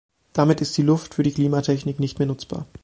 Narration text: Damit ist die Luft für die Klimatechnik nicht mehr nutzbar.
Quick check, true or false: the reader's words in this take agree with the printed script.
true